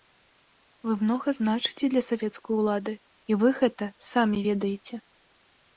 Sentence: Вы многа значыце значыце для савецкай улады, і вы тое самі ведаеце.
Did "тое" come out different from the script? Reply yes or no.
yes